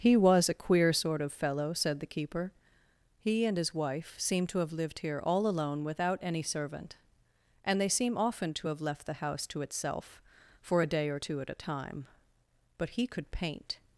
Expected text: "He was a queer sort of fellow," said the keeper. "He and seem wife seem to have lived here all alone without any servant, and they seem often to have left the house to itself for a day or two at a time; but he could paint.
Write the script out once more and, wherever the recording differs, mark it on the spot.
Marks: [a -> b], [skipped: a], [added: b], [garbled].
"He was a queer sort of fellow," said the keeper. "He and [seem -> his] wife seem to have lived here all alone without any servant, and they seem often to have left the house to itself for a day or two at a time; but he could paint.